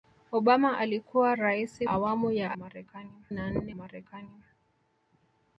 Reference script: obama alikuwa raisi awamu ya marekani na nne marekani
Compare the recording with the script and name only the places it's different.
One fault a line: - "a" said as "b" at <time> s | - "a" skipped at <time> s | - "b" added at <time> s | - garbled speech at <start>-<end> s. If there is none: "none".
none